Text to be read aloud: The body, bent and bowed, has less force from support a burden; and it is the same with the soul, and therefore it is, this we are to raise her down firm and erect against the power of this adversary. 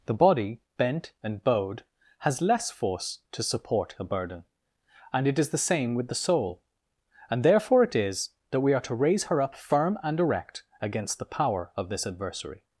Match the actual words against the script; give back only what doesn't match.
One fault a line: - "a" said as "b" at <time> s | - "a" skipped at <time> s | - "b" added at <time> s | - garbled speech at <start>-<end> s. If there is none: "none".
- "from" said as "to" at 3.3 s
- "this" said as "that" at 8.5 s
- "down" said as "up" at 9.4 s